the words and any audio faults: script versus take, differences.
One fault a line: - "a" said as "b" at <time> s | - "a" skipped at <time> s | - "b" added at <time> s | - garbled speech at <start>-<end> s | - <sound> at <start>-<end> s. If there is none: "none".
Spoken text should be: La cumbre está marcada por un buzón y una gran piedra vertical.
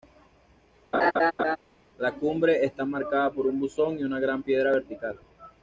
- laugh at 0.9-1.6 s